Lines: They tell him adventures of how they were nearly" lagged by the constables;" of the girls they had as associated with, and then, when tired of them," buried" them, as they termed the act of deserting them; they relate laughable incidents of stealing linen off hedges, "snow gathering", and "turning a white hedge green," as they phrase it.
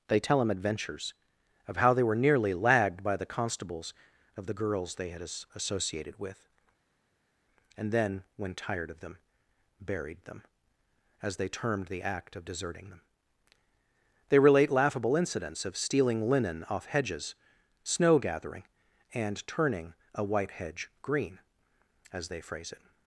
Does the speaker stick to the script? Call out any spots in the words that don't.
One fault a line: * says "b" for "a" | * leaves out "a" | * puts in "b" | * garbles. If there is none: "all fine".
all fine